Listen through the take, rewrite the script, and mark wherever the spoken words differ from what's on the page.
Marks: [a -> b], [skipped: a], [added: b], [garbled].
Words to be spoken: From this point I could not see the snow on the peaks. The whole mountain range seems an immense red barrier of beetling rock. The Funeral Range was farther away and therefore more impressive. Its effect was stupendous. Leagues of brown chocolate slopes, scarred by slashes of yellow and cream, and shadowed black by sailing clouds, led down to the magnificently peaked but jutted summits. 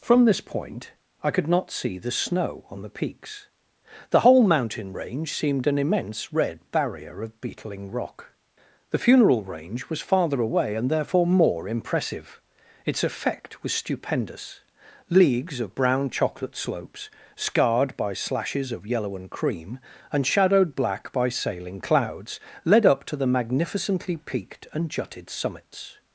From this point I could not see the snow on the peaks. The whole mountain range [seems -> seemed] an immense red barrier of beetling rock. The Funeral Range was farther away and therefore more impressive. Its effect was stupendous. Leagues of brown chocolate slopes, scarred by slashes of yellow and cream, and shadowed black by sailing clouds, led [down -> up] to the magnificently peaked [but -> and] jutted summits.